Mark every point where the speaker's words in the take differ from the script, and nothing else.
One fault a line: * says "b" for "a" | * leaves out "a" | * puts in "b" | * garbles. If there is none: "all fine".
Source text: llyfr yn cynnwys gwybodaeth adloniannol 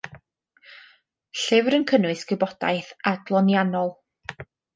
all fine